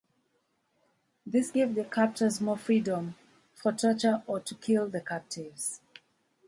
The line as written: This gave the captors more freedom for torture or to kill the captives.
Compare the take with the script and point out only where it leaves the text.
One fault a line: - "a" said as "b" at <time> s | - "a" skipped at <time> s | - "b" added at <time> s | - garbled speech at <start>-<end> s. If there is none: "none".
none